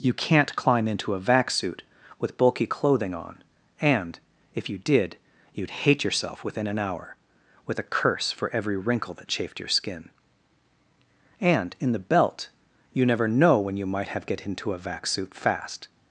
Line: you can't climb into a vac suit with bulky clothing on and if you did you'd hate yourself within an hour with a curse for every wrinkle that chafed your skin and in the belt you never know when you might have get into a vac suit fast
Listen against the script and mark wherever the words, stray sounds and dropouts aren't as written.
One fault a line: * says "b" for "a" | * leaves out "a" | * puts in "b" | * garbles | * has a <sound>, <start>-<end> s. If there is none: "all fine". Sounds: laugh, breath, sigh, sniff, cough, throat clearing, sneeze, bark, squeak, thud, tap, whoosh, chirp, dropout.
all fine